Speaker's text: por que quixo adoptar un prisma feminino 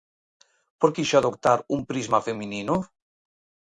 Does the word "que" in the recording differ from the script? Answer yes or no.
yes